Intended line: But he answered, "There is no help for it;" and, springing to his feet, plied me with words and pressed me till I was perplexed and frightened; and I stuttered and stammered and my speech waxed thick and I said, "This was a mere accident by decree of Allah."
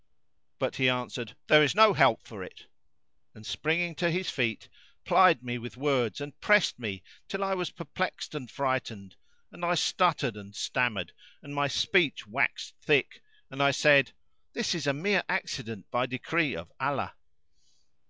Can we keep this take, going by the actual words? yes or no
no